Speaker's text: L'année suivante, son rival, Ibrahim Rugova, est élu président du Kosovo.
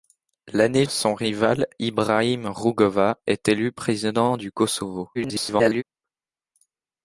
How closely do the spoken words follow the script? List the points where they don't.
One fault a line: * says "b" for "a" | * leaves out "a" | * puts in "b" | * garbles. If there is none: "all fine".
* leaves out "suivante"
* garbles